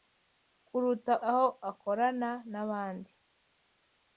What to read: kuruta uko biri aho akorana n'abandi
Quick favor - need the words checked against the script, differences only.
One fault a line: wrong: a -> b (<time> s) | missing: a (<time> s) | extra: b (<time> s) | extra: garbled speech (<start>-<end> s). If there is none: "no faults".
missing: uko biri (1.1 s)